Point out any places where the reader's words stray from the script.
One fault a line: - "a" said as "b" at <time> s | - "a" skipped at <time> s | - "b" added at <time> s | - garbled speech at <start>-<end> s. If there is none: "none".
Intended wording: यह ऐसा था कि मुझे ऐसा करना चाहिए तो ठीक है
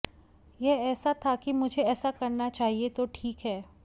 none